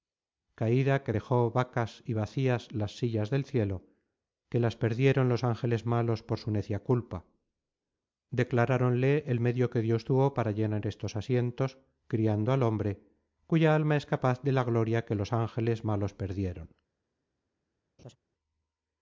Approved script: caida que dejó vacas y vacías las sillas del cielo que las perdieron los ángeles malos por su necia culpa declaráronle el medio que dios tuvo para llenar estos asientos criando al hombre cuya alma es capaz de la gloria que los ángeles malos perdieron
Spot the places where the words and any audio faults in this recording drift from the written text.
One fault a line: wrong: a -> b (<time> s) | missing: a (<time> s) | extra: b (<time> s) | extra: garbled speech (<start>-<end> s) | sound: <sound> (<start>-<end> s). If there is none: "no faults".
sound: laugh (18.0-18.2 s)